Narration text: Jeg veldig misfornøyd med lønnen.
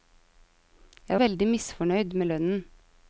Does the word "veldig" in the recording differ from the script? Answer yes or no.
no